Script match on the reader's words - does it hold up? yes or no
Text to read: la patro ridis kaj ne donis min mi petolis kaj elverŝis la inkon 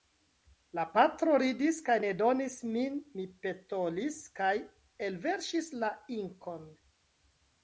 yes